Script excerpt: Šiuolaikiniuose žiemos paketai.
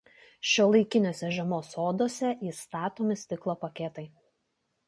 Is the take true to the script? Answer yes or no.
no